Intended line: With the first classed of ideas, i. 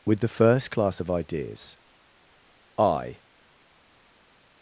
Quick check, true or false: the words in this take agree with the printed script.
false